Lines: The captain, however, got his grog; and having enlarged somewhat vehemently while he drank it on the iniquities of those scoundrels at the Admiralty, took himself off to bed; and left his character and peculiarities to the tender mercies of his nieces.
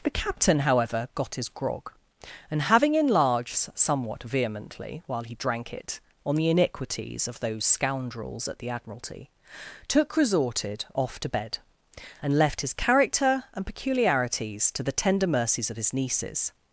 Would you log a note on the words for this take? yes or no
yes